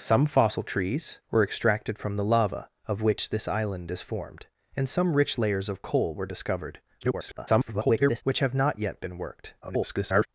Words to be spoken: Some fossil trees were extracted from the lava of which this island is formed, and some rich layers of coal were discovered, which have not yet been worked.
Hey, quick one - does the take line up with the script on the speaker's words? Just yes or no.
no